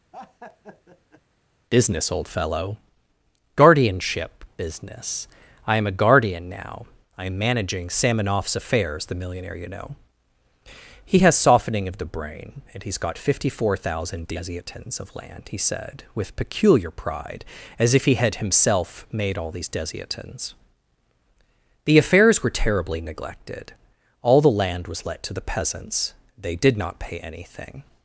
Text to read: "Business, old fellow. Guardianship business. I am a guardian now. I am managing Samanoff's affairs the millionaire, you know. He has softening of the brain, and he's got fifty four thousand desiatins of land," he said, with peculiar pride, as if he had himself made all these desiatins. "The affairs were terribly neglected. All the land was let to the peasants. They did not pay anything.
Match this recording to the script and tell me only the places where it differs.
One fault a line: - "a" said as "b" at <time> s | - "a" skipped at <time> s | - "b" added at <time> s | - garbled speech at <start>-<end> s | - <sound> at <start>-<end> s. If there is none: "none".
- laugh at 0.1-1.2 s